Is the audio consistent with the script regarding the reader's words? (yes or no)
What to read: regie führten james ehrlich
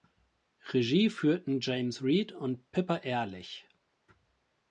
no